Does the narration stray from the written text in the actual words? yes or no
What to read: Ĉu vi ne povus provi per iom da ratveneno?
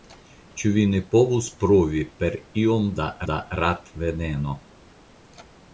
yes